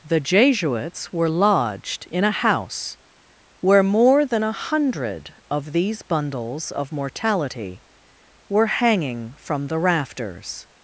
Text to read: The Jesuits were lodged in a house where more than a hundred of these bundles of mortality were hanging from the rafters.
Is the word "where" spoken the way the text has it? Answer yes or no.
yes